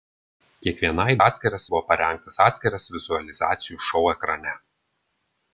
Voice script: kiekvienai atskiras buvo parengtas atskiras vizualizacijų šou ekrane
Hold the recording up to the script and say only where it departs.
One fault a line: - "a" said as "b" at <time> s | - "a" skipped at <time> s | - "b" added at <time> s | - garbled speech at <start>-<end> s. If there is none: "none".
none